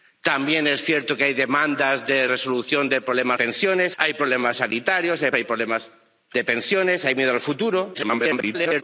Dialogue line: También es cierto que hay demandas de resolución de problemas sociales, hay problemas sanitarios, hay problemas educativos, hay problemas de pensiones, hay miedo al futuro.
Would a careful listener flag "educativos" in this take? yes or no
yes